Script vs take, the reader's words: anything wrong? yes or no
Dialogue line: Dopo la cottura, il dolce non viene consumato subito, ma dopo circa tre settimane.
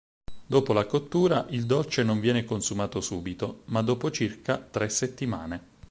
no